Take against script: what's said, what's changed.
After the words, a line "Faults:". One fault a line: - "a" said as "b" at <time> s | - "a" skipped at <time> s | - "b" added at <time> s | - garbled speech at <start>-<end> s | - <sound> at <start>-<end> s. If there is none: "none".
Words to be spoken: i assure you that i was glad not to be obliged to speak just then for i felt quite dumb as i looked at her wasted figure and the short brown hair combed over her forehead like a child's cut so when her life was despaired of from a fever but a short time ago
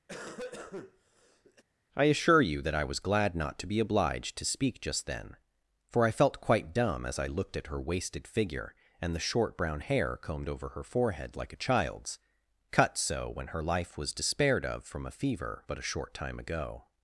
i assure you that i was glad not to be obliged to speak just then for i felt quite dumb as i looked at her wasted figure and the short brown hair combed over her forehead like a child's cut so when her life was despaired of from a fever but a short time ago
Faults:
- cough at 0.1-1.6 s